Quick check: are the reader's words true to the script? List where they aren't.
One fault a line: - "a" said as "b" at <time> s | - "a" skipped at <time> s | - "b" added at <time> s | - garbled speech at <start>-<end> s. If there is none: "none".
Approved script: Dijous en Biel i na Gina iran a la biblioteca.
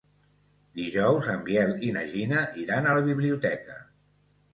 none